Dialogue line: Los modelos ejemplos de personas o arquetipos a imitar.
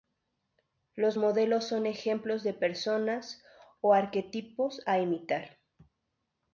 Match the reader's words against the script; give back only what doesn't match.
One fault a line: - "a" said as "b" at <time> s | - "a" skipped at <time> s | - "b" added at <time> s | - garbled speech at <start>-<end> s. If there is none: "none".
- "son" added at 1.6 s